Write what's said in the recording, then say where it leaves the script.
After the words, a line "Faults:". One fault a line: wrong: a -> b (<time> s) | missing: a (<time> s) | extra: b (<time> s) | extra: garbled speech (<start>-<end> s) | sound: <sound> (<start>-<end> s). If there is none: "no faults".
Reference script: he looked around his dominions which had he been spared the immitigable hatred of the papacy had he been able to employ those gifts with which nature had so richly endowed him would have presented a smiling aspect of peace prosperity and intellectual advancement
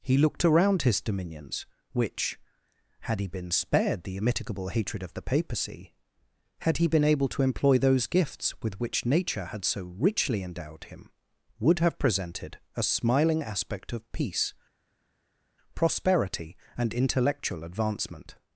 he looked around his dominions which had he been spared the immitigable hatred of the papacy had he been able to employ those gifts with which nature had so richly endowed him would have presented a smiling aspect of peace prosperity and intellectual advancement
Faults:
no faults